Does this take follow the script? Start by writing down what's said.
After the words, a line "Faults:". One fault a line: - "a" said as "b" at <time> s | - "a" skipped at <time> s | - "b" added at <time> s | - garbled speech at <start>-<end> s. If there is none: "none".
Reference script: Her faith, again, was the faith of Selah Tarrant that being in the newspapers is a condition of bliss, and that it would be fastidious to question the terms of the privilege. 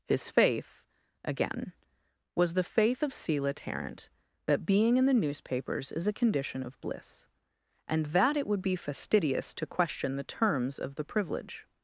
His faith, again, was the faith of Selah Tarrant that being in the newspapers is a condition of bliss, and that it would be fastidious to question the terms of the privilege.
Faults:
- "Her" said as "His" at 0.1 s